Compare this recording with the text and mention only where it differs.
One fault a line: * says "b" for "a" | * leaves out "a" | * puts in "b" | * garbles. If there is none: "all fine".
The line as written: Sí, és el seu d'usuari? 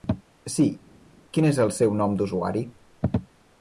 * puts in "quin"
* puts in "nom"